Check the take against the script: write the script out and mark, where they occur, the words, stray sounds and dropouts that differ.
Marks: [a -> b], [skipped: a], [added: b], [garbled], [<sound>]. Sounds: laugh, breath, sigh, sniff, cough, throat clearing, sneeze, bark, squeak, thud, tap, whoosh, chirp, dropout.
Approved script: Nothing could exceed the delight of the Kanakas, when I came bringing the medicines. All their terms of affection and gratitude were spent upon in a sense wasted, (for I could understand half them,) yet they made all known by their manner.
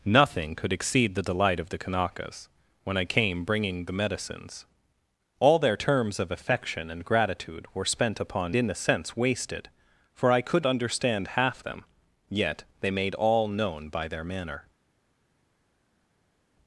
Nothing could exceed the delight of the Kanakas, when I came bringing the medicines. All their terms of affection and gratitude were spent upon in a sense wasted, (for I could understand half them,) yet they made all known by their manner.